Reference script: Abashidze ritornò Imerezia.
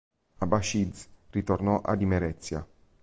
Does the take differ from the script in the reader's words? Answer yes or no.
yes